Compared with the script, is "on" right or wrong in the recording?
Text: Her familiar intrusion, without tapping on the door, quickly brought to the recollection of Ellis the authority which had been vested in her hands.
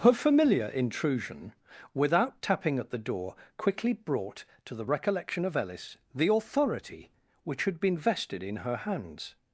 wrong